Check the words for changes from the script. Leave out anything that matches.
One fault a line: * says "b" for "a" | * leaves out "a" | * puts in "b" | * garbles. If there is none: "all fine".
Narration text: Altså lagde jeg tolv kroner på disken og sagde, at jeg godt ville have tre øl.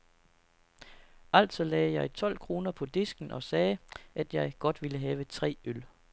all fine